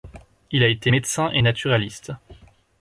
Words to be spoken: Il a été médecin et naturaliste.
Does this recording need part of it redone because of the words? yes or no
no